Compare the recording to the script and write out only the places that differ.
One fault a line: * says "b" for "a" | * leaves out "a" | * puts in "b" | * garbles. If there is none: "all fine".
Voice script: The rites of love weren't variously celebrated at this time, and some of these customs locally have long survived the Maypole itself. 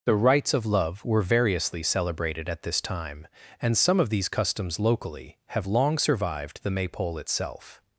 * says "were" for "weren't"